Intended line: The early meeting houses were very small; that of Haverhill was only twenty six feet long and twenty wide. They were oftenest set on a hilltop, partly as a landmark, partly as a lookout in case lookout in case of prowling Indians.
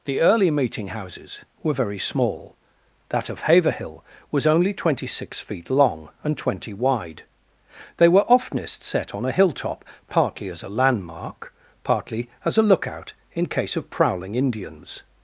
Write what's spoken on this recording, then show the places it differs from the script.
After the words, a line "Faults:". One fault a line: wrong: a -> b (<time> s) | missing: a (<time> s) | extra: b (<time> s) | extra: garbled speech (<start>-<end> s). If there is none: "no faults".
The early meeting houses were very small; that of Haverhill was only twenty six feet long and twenty wide. They were oftenest set on a hilltop, partly as a landmark, partly as a lookout in case of prowling Indians.
Faults:
missing: lookout in case (13.8 s)